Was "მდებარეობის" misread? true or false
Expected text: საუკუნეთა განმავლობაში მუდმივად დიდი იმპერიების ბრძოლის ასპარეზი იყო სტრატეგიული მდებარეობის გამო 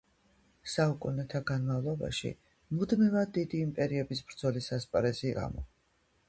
true